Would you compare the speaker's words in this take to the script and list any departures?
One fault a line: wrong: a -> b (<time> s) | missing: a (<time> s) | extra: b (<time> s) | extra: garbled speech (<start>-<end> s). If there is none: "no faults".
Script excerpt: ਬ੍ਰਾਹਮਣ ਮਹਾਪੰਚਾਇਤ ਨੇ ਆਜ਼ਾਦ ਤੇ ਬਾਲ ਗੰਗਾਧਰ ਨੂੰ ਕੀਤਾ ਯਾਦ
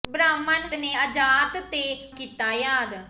missing: ਮਹਾਪੰਚਾਇਤ (0.7 s)
missing: ਬਾਲ ਗੰਗਾਧਰ ਨੂੰ (1.8 s)